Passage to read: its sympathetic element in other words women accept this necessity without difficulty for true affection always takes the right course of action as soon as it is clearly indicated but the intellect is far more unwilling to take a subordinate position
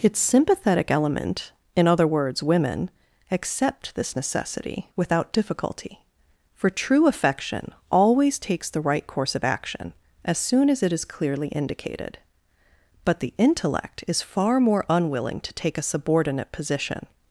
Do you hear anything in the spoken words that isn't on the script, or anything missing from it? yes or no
no